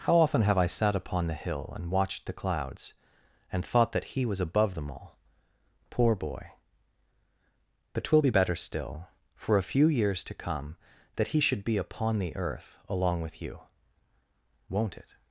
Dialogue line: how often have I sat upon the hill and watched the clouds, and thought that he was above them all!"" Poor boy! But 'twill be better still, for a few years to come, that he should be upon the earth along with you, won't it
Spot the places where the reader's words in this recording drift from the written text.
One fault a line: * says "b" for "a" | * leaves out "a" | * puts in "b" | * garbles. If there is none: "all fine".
all fine